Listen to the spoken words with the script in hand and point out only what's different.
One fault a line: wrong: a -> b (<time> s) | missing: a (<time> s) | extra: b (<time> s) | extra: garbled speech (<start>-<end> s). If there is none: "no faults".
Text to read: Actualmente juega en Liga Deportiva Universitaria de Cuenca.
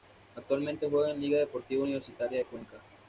no faults